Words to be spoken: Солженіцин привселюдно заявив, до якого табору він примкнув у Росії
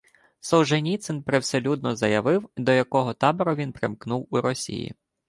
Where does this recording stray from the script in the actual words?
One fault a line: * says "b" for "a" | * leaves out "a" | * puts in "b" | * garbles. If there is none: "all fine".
all fine